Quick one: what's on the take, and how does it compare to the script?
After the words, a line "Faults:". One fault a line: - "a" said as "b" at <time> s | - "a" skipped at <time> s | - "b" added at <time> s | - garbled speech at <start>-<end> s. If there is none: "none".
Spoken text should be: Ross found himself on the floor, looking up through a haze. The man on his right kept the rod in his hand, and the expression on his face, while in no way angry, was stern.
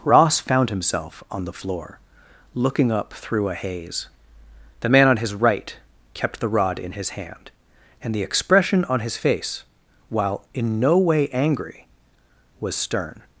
Ross found himself on the floor, looking up through a haze. The man on his right kept the rod in his hand, and the expression on his face, while in no way angry, was stern.
Faults:
none